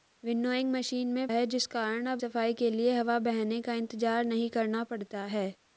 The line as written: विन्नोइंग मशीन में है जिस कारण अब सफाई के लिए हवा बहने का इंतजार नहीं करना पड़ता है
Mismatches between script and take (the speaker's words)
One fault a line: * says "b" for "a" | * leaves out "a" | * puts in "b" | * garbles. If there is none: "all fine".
all fine